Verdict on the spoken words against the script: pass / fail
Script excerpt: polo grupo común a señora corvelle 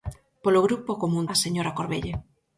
pass